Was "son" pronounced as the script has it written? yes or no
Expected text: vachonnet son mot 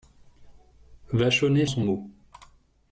yes